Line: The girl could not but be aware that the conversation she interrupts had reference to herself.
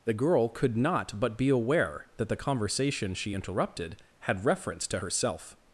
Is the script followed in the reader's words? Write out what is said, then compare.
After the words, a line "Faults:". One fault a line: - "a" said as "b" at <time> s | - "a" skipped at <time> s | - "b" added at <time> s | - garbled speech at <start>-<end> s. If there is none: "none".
The girl could not but be aware that the conversation she interrupted had reference to herself.
Faults:
- "interrupts" said as "interrupted" at 3.3 s